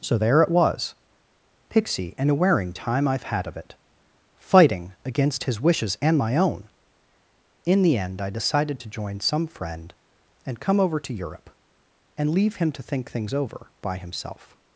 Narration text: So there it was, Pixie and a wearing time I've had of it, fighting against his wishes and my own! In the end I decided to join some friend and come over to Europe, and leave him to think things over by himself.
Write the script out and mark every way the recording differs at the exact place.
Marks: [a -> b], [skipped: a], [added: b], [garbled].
So there it was, Pixie and a wearing time I've had of it, fighting against his wishes and my own! In the end I decided to join some friend and come over to Europe, and leave him to think things over by himself.